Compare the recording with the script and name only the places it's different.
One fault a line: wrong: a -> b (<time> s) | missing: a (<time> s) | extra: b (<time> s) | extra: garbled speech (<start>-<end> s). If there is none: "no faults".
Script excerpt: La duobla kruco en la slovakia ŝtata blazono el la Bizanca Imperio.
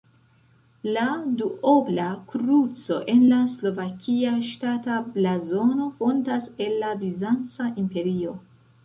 extra: fontas (6.0 s)